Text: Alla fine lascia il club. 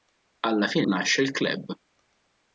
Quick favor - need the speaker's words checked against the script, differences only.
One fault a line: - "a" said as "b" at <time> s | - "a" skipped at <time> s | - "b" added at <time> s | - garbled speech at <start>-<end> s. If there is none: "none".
none